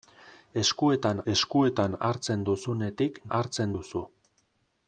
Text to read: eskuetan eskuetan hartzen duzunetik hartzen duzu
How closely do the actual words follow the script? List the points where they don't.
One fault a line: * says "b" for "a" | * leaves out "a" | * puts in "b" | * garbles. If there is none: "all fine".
all fine